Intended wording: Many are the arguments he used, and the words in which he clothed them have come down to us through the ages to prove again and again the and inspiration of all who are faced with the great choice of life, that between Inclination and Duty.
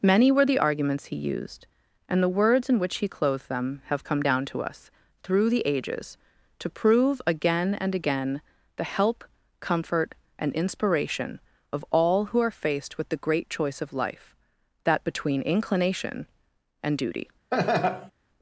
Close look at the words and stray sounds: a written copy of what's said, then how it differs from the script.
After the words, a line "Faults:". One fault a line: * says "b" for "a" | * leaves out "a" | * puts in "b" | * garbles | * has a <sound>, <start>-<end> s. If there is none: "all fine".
Many were the arguments he used, and the words in which he clothed them have come down to us through the ages to prove again and again the help, comfort, and inspiration of all who are faced with the great choice of life, that between Inclination and Duty.
Faults:
* says "were" for "are"
* puts in "help comfort"
* has a laugh, 17.5-18.1 s